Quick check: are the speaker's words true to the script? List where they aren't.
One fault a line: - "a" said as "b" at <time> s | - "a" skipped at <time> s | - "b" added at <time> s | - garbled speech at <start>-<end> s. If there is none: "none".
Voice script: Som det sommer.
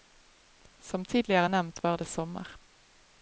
- "tidligere nevnt var" added at 1.1 s